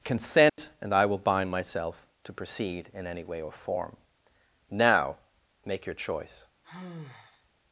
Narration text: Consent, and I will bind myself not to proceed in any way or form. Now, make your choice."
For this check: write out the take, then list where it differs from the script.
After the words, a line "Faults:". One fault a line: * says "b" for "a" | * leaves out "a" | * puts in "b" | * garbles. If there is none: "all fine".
Consent, and I will bind myself to proceed in any way or form. Now, make your choice."
Faults:
* leaves out "not"